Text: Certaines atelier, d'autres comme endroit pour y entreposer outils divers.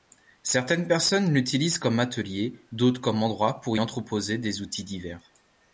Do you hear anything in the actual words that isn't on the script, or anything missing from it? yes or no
yes